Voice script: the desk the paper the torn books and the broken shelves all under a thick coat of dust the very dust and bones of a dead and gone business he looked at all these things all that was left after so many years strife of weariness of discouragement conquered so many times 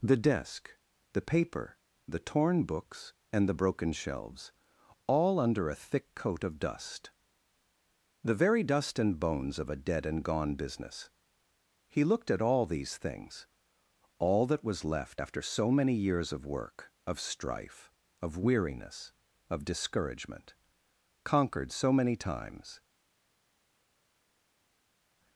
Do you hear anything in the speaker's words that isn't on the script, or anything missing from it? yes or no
yes